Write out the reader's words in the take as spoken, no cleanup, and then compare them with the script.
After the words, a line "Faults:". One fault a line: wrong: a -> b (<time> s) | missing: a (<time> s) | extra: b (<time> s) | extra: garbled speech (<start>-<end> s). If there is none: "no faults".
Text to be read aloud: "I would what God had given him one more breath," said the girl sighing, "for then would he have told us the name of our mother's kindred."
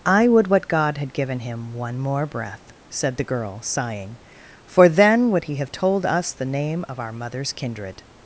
"I would what God had given him one more breath," said the girl sighing, "for then would he have told us the name of our mother's kindred."
Faults:
no faults